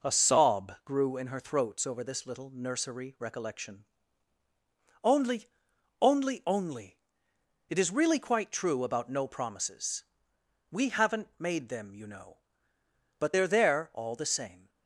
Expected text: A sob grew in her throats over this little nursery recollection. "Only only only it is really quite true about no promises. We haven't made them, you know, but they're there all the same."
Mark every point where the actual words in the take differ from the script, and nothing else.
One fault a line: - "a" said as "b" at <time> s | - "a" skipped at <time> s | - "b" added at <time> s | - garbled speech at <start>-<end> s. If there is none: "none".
none